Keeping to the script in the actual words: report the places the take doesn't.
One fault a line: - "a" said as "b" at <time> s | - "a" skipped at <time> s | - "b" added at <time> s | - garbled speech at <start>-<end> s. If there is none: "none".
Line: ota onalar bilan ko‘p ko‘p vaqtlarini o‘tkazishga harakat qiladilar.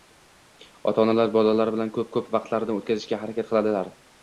- "bolalari" added at 1.4 s